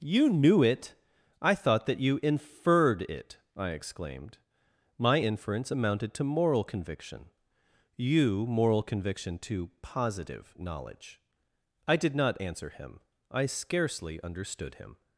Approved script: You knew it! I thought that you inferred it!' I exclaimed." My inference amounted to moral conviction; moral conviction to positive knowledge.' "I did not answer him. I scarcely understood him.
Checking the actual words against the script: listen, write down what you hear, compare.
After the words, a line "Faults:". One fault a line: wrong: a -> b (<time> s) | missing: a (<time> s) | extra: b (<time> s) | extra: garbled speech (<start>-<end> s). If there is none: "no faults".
You knew it! I thought that you inferred it!' I exclaimed." My inference amounted to moral conviction; you moral conviction to positive knowledge.' "I did not answer him. I scarcely understood him.
Faults:
extra: you (8.0 s)